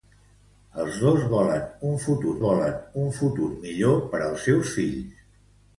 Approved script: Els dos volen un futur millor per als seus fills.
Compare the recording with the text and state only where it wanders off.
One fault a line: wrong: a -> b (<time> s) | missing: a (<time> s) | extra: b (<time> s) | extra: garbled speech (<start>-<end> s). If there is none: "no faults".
extra: volen un futur (2.4 s)